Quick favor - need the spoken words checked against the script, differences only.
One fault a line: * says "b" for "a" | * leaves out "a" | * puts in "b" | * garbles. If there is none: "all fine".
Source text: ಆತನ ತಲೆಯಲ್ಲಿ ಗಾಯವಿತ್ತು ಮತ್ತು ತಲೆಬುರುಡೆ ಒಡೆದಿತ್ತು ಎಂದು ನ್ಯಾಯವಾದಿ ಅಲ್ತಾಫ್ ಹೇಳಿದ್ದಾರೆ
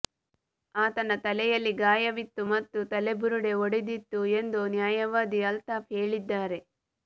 all fine